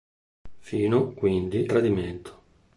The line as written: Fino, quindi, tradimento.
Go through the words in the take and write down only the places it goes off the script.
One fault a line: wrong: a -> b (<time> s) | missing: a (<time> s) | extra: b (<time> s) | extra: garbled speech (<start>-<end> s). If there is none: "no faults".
no faults